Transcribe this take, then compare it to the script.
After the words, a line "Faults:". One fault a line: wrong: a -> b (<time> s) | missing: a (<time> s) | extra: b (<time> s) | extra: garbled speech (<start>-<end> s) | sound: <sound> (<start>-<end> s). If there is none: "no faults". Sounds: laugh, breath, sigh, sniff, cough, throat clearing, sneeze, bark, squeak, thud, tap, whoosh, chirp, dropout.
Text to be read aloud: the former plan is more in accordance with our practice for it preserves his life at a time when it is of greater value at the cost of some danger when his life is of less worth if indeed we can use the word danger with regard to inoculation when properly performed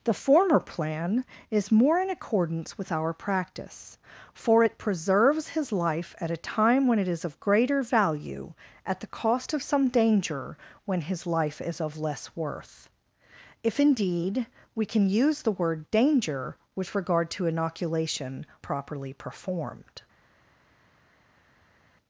the former plan is more in accordance with our practice for it preserves his life at a time when it is of greater value at the cost of some danger when his life is of less worth if indeed we can use the word danger with regard to inoculation properly performed
Faults:
missing: when (18.5 s)